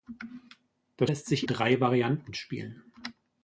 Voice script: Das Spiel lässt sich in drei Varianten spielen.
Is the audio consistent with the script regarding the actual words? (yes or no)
no